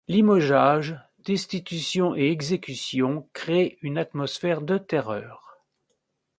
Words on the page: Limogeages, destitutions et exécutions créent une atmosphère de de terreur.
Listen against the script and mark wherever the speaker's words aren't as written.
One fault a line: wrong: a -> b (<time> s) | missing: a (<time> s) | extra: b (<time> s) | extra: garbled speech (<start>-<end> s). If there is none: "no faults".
missing: de (4.8 s)